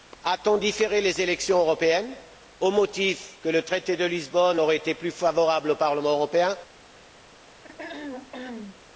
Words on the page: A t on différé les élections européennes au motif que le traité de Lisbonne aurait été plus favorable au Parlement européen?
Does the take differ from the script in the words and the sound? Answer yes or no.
yes